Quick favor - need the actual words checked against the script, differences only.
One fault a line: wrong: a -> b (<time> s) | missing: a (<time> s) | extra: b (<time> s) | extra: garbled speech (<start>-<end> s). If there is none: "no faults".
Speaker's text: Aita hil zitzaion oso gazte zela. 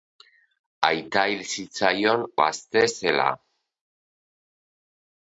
missing: oso (2.2 s)